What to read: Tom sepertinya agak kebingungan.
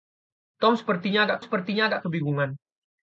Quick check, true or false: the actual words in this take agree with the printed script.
false